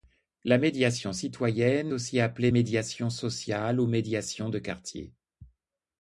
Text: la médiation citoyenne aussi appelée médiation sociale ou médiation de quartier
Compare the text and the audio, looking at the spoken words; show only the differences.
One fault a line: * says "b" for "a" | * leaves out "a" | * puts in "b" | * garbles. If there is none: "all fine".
all fine